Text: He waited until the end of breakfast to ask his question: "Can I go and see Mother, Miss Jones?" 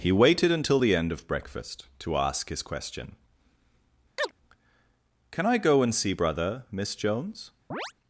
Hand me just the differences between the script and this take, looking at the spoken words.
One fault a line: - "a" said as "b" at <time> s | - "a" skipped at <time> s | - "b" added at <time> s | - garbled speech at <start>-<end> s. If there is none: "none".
- "Mother" said as "Brother" at 6.1 s